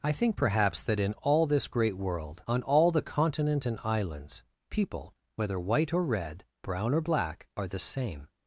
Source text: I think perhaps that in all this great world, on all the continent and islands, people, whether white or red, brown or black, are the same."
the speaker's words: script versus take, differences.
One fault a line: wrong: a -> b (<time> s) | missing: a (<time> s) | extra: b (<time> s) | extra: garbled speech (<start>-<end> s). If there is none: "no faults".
no faults